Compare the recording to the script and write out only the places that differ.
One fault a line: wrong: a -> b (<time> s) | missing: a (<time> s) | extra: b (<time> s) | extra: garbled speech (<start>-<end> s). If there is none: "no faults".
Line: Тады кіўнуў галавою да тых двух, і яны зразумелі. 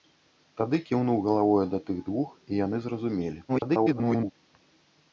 extra: garbled speech (3.5-4.3 s)